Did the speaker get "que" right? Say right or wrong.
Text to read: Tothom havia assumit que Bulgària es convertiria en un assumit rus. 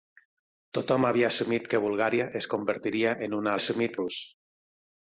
right